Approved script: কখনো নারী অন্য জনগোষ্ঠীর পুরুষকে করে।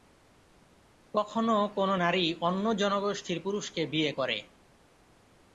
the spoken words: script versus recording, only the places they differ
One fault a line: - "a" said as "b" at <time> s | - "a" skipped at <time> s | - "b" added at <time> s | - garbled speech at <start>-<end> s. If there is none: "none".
- "কোনো" added at 1.8 s
- "বিয়ে" added at 3.9 s